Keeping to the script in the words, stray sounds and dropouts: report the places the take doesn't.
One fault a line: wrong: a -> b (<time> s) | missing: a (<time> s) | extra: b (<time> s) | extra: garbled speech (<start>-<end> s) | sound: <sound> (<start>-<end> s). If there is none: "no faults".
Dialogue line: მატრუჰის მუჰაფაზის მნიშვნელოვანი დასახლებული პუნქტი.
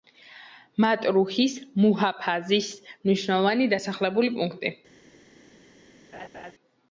sound: laugh (6.1-6.5 s)